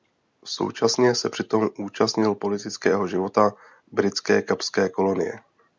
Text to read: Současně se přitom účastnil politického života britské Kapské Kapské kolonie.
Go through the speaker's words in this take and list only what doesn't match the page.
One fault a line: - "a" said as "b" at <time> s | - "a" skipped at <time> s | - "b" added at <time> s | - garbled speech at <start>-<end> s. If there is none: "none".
- "Kapské" skipped at 4.9 s